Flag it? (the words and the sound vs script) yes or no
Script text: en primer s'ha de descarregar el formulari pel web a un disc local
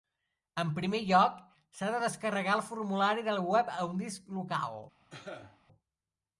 yes